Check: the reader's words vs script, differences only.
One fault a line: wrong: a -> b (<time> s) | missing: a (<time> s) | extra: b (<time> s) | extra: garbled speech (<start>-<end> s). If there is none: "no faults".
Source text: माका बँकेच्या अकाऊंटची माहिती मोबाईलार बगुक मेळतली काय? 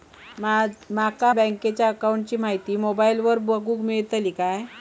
no faults